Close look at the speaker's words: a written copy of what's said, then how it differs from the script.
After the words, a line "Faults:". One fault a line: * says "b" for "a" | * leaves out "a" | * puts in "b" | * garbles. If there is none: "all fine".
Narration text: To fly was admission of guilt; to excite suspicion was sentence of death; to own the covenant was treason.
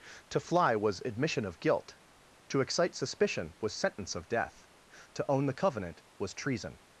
To fly was admission of guilt; to excite suspicion was sentence of death; to own the covenant was treason.
Faults:
all fine